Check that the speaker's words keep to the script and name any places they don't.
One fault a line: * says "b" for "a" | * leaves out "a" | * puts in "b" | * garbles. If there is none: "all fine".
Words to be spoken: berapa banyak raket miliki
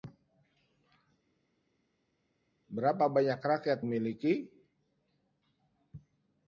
all fine